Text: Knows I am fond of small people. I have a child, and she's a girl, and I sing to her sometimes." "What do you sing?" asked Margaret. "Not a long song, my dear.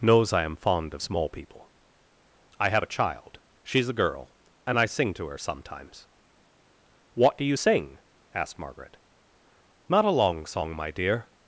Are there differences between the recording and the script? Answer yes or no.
yes